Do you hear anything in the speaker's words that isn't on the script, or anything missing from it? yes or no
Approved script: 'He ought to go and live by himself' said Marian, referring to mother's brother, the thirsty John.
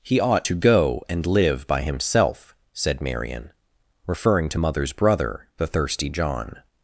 no